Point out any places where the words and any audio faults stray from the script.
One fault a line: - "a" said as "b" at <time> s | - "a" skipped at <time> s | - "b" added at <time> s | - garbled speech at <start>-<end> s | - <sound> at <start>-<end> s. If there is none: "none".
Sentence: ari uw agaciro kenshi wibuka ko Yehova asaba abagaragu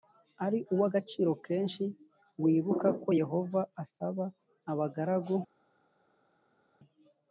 none